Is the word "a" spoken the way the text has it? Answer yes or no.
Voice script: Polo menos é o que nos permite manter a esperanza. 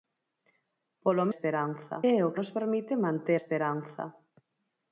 no